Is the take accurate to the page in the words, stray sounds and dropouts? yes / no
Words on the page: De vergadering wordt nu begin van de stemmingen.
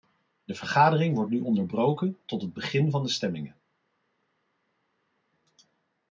no